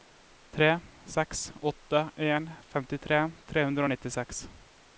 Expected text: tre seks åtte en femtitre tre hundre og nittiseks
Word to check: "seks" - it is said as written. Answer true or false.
true